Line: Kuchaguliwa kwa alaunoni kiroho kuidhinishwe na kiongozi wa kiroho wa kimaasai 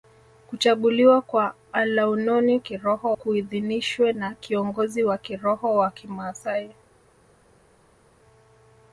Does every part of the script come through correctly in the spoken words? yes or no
yes